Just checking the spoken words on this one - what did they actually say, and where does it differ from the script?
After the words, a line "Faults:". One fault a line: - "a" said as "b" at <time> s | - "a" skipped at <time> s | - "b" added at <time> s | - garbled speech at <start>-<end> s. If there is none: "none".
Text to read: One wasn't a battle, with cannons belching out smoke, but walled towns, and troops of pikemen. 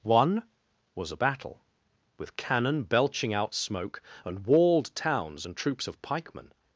One was a battle, with cannon belching out smoke, and walled towns, and troops of pikemen.
Faults:
- "wasn't" said as "was" at 0.9 s
- "cannons" said as "cannon" at 2.4 s
- "but" said as "and" at 4.2 s